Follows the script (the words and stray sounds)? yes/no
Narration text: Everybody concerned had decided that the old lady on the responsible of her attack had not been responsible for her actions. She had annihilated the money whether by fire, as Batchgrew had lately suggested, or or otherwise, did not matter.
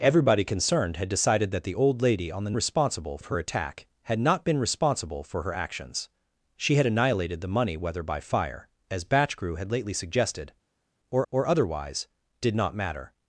yes